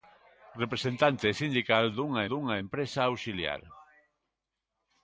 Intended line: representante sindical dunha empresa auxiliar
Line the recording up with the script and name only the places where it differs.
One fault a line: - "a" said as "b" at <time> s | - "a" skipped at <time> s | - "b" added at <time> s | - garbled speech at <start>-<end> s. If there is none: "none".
- "dunha" added at 2.3 s